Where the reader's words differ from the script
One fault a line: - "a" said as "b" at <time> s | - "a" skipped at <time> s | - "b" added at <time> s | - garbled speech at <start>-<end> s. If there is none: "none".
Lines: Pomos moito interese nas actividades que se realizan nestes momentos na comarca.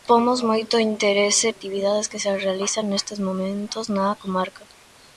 - "nas" skipped at 1.5 s